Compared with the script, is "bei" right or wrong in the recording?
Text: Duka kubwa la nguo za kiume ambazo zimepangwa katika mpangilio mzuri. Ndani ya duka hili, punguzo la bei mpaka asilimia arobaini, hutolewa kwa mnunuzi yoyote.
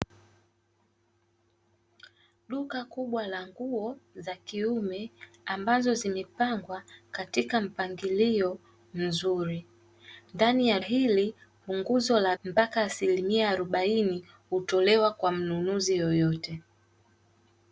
wrong